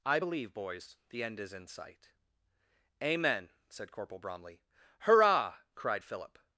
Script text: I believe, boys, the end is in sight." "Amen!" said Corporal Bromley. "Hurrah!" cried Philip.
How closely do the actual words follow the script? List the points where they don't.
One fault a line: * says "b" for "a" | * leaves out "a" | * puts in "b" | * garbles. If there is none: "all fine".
all fine